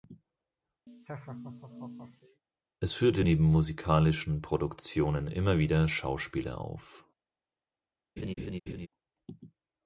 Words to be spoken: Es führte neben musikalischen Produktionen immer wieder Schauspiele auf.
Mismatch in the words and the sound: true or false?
true